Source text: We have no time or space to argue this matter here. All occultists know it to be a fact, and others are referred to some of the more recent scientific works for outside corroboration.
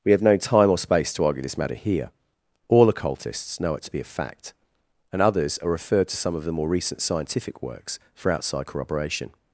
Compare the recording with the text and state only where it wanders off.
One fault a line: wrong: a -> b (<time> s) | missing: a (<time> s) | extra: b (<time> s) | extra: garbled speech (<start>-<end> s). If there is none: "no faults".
no faults